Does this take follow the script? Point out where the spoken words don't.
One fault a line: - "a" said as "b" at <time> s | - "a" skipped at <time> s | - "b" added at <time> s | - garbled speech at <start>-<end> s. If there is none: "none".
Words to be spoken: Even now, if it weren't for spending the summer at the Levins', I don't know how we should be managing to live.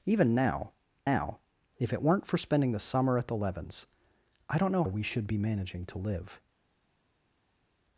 - "now" added at 1.0 s
- "how" skipped at 4.8 s